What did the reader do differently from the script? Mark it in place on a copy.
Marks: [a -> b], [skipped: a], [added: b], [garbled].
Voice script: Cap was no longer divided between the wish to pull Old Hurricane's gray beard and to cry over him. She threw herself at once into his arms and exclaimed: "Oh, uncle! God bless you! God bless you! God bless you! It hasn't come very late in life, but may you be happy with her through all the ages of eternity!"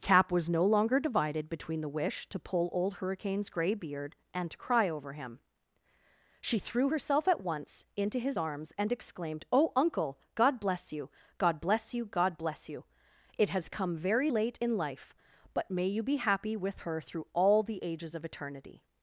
Cap was no longer divided between the wish to pull Old Hurricane's gray beard and to cry over him. She threw herself at once into his arms and exclaimed: "Oh, uncle! God bless you! God bless you! God bless you! It [hasn't -> has] come very late in life, but may you be happy with her through all the ages of eternity!"